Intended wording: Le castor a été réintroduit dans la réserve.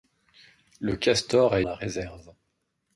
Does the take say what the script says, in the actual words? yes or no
no